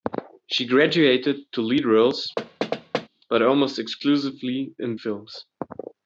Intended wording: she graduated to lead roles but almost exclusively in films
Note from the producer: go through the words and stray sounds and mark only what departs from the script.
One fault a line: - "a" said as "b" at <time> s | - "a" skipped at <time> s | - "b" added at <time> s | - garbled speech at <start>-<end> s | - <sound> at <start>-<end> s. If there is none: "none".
- thud at 2.4-3.1 s